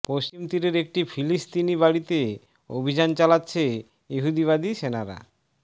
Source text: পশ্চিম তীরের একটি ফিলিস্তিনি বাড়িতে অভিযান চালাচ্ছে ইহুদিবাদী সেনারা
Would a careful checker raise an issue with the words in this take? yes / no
no